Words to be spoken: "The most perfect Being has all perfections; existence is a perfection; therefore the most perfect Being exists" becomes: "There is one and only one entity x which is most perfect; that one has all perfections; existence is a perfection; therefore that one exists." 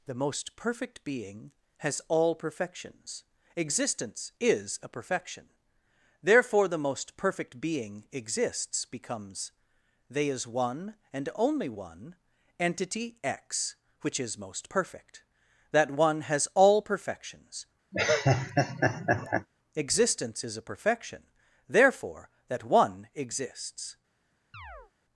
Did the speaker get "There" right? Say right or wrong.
wrong